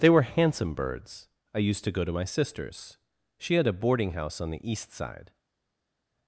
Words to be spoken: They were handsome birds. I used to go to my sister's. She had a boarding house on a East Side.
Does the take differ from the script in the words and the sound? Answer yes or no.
yes